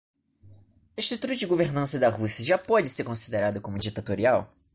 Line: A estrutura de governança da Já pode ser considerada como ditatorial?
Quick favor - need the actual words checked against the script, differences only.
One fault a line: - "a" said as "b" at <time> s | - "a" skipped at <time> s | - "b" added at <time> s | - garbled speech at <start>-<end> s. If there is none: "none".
- "Rússia" added at 2.1 s